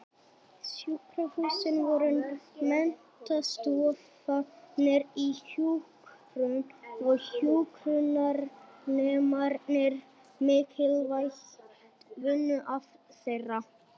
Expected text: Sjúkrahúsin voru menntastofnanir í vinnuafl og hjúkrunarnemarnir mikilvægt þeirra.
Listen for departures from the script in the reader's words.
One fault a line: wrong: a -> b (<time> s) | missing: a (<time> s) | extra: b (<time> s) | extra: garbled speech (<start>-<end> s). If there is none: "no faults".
wrong: vinnuafl -> hjúkrun (5.5 s)
extra: vinnuafl (12.3 s)